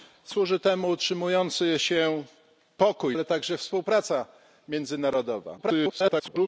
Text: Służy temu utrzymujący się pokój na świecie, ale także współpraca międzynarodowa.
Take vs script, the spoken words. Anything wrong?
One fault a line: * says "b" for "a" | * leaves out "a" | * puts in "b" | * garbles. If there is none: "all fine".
* leaves out "na świecie"
* garbles